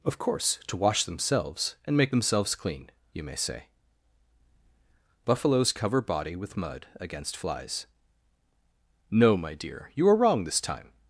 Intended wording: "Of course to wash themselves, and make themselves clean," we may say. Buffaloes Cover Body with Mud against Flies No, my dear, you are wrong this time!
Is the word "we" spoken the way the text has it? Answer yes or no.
no